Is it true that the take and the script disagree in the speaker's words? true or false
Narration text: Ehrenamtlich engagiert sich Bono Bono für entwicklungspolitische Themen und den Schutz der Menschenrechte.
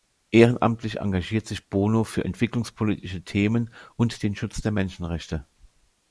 true